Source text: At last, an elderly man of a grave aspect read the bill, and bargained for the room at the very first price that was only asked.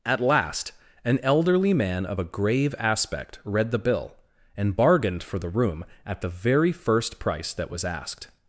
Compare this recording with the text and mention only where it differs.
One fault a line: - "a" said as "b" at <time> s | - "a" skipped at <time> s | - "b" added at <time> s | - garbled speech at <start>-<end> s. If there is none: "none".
- "only" skipped at 7.8 s